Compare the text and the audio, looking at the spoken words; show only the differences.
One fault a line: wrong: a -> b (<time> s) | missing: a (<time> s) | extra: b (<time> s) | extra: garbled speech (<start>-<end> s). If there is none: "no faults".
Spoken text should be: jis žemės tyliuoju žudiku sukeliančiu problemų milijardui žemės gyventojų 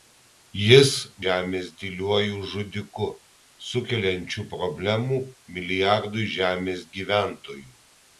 no faults